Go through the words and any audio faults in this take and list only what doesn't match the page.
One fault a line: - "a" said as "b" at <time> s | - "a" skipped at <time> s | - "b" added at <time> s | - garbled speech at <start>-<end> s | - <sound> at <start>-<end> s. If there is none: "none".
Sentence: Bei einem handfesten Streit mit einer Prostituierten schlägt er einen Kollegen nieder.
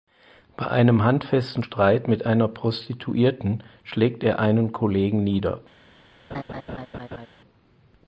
- laugh at 6.3-7.3 s